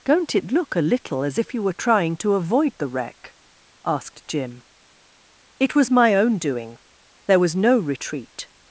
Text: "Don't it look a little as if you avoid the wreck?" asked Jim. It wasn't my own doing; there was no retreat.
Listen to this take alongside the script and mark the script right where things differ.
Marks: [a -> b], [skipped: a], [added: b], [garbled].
"Don't it look a little as if you [added: were trying to] avoid the wreck?" asked Jim. It [wasn't -> was] my own doing; there was no retreat.